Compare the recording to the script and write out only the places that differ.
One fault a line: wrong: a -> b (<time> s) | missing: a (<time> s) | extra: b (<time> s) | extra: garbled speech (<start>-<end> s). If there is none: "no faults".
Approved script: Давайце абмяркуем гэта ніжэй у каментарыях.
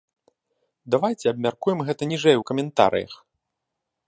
no faults